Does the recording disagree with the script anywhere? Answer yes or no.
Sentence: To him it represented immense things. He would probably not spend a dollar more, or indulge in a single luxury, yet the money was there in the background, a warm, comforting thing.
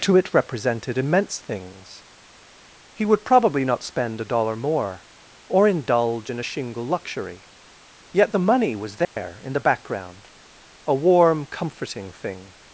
yes